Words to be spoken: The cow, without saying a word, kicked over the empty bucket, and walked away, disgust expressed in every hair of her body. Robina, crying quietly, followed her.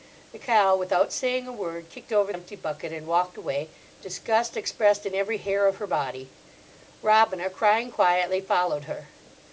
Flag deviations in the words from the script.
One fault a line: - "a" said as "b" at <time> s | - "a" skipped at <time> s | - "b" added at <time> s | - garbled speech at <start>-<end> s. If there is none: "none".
- "the" skipped at 2.3 s